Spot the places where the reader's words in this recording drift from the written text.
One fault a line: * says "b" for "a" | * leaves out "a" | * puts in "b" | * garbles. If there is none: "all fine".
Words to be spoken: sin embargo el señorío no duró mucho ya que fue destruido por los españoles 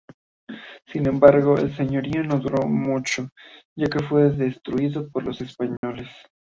all fine